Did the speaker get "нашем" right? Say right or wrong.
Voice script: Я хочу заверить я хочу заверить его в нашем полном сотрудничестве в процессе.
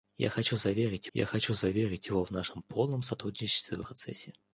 right